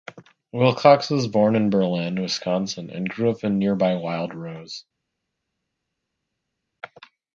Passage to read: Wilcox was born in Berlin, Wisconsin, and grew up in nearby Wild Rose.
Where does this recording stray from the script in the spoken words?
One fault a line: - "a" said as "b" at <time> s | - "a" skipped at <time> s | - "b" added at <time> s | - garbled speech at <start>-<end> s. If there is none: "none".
none